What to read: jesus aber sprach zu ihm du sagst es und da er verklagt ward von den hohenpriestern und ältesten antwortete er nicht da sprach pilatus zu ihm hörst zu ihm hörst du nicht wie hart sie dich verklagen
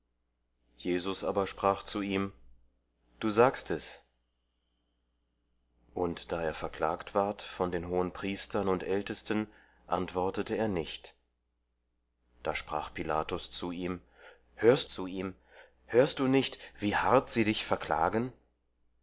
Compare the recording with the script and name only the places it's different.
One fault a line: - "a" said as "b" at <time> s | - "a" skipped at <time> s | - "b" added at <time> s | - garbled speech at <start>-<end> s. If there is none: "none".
none